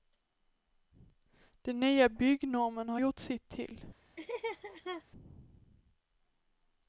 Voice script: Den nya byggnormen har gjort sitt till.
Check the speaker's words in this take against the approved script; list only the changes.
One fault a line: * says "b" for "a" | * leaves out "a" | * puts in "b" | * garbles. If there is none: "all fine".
all fine